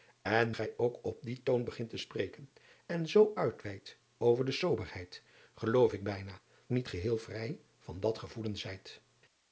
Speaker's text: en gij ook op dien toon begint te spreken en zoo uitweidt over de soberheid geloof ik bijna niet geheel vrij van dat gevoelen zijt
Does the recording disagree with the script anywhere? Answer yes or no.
no